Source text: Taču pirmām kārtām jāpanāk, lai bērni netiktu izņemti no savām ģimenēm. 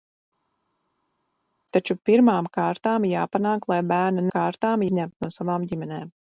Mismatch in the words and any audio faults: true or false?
true